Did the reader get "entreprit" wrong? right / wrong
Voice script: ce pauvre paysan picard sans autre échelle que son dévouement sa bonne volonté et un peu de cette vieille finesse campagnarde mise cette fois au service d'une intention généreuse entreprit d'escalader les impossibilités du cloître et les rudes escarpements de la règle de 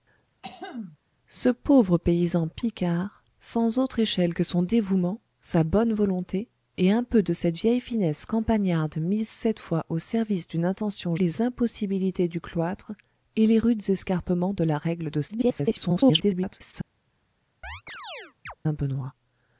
wrong